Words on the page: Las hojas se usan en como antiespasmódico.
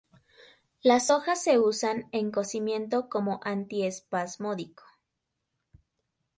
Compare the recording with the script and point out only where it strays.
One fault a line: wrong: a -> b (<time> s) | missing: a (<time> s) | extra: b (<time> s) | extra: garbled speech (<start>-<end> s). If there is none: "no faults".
extra: cocimiento (2.3 s)